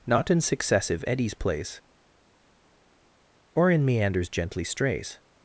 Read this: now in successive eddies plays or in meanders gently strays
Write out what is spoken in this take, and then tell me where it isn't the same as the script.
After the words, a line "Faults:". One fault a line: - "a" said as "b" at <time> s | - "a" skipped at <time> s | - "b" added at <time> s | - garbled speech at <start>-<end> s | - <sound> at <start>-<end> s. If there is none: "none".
not in successive eddies plays or in meanders gently strays
Faults:
- "now" said as "not" at 0.1 s